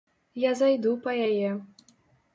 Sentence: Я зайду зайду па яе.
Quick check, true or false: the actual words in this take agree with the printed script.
false